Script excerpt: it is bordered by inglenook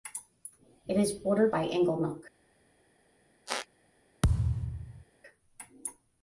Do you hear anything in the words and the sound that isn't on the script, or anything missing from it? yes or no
yes